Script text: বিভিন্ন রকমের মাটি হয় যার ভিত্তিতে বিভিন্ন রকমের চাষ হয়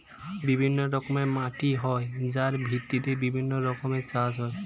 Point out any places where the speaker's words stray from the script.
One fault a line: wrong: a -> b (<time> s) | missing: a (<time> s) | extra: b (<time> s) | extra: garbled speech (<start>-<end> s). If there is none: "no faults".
no faults